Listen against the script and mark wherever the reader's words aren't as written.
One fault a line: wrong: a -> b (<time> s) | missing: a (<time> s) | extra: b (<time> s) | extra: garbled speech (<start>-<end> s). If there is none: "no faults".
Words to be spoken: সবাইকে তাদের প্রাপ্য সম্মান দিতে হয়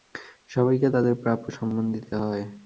no faults